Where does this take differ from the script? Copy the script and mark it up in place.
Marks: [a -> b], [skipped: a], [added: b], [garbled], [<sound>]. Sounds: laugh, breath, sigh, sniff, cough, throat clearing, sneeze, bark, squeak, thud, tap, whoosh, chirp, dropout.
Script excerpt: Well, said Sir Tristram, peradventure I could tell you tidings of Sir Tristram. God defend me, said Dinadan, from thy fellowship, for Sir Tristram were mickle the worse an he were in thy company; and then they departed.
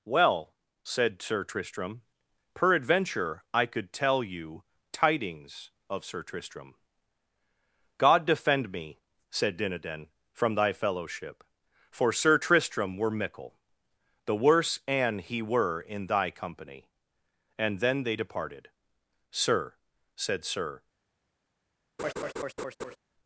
Well, said Sir Tristram, peradventure I could tell you tidings of Sir Tristram. God defend me, said Dinadan, from thy fellowship, for Sir Tristram were mickle the worse an he were in thy company; and then they departed. [added: Sir said Sir] [laugh]